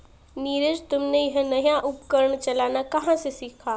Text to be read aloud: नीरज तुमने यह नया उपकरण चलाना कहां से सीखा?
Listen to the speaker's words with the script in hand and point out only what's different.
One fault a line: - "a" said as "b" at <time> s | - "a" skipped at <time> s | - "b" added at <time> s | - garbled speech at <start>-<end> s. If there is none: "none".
none